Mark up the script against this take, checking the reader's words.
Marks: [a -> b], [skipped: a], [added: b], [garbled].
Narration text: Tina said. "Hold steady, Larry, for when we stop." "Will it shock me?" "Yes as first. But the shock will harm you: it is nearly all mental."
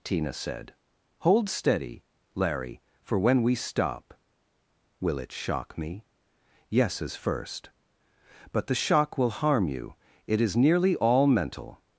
Tina said. "Hold steady, Larry, for when we stop." "Will it shock me?" "Yes as first. But the shock will harm you: it is nearly all mental."